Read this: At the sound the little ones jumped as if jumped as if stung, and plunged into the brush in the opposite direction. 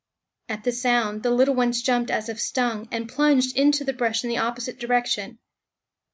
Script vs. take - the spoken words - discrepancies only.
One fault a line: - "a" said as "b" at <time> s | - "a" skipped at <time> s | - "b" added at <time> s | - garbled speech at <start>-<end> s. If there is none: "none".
- "jumped as if" skipped at 2.4 s